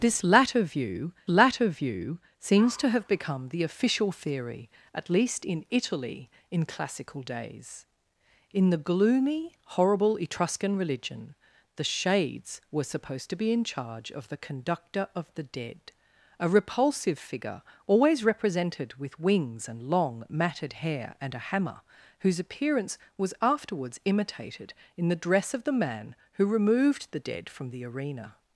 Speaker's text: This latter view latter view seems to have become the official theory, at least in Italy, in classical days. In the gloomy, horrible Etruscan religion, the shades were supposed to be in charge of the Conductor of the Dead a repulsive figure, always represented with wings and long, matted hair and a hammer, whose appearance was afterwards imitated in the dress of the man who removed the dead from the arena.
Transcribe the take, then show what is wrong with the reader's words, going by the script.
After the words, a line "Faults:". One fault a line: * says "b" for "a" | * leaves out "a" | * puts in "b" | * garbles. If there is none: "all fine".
This latter view latter view seems to have become the official theory, at least in Italy, in classical days. In the gloomy, horrible Etruscan religion, the shades were supposed to be in charge of the Conductor of the Dead a repulsive figure, always represented with wings and long, matted hair and a hammer, whose appearance was afterwards imitated in the dress of the man who removed the dead from the arena.
Faults:
all fine